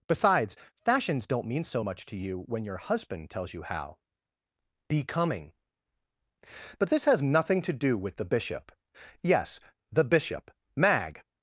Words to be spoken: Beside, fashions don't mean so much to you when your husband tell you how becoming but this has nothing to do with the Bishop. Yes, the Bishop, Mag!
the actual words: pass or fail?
fail